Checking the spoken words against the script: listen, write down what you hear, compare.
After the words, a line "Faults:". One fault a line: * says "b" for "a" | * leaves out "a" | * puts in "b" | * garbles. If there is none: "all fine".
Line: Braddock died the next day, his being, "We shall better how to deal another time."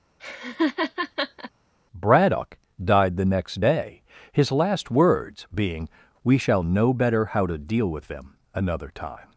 Braddock died the next day, his last words being, "We shall know better how to deal with them another time."
Faults:
* puts in "last words"
* puts in "know"
* puts in "with them"